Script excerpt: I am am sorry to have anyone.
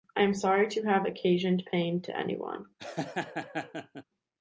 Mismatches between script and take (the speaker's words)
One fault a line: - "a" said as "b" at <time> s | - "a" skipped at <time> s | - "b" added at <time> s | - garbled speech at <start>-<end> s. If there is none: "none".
- "am" skipped at 0.3 s
- "occasioned pain to" added at 1.0 s